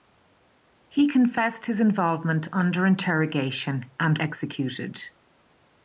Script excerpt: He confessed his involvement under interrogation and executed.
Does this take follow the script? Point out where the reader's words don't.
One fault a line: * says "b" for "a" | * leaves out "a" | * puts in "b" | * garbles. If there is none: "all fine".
all fine